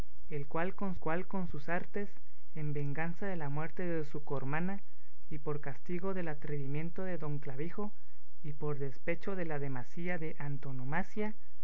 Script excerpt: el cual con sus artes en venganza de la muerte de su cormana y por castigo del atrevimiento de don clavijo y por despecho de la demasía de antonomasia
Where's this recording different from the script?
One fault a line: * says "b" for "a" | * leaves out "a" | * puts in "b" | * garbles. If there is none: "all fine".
* puts in "cual con"